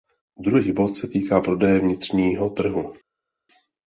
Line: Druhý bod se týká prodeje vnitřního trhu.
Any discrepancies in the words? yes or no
no